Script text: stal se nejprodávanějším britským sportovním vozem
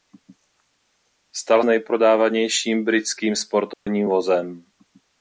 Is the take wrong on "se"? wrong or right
wrong